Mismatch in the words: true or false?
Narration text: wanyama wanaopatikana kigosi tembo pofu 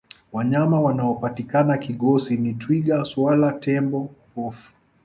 true